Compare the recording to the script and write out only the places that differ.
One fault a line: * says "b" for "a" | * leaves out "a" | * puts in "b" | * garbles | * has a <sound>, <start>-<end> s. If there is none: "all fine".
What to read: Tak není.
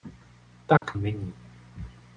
* has a dropout, 0.8-0.8 s